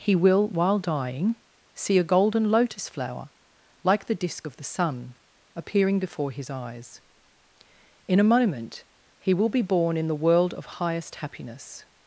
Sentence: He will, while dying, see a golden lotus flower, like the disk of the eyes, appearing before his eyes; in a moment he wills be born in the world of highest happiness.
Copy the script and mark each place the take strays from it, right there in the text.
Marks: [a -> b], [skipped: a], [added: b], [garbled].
He will, while dying, see a golden lotus flower, like the disk of the [eyes, -> sun] appearing before his eyes; in a moment he [wills -> will] be born in the world of highest happiness.